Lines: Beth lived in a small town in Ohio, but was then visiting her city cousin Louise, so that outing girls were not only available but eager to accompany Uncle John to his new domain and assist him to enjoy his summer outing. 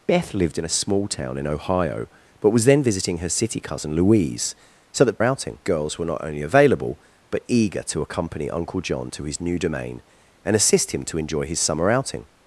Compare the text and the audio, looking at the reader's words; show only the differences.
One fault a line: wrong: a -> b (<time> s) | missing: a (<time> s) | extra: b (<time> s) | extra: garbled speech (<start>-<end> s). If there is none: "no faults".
no faults